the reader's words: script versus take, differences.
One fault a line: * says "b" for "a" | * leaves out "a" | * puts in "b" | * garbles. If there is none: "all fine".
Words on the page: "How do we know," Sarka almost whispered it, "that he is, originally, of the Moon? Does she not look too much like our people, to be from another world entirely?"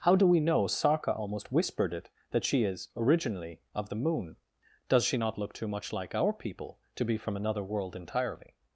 * says "she" for "he"